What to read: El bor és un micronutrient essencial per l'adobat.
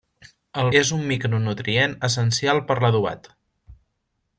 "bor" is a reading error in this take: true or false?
true